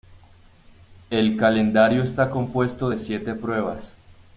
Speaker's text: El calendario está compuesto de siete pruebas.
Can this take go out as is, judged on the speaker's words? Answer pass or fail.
pass